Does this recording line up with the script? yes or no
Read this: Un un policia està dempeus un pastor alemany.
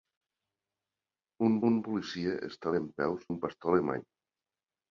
yes